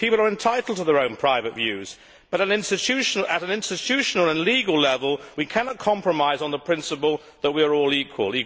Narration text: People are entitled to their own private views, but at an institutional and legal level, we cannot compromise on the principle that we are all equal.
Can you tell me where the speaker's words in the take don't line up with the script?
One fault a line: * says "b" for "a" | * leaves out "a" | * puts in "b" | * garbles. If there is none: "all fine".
all fine